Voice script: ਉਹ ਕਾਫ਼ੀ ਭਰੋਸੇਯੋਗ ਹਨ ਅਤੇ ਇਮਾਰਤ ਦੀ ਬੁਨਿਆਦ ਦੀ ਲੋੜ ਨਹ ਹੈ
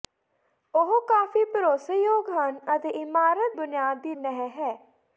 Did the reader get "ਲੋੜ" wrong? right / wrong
wrong